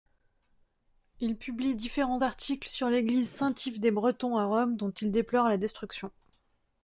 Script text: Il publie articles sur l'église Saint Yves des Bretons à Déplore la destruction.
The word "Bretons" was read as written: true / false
true